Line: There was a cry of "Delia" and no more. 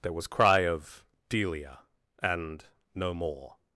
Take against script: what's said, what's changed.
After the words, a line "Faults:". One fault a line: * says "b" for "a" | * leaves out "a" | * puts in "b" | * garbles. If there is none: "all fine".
There was cry of "Delia" and no more.
Faults:
* leaves out "a"